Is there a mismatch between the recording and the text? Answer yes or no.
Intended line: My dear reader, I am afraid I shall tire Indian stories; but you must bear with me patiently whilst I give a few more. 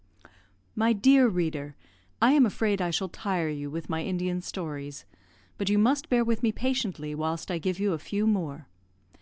yes